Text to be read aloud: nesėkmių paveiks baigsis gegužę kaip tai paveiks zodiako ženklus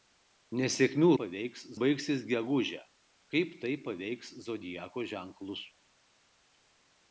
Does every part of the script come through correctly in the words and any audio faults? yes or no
yes